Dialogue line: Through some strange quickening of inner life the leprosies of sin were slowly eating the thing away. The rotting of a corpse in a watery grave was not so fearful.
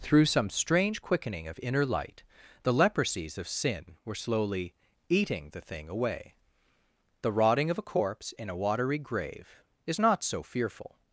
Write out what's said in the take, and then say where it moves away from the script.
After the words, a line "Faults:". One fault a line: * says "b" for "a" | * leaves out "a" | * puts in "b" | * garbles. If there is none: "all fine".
Through some strange quickening of inner light the leprosies of sin were slowly eating the thing away. The rotting of a corpse in a watery grave is not so fearful.
Faults:
* says "light" for "life"
* says "is" for "was"